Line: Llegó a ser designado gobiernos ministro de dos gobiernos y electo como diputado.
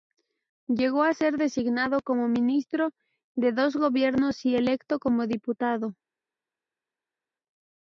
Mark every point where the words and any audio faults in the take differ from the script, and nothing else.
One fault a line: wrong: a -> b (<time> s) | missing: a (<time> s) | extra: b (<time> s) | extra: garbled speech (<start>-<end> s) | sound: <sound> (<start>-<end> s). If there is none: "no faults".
wrong: gobiernos -> como (2.0 s)